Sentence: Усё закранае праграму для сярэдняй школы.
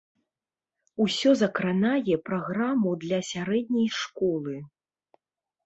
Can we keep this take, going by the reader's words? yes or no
yes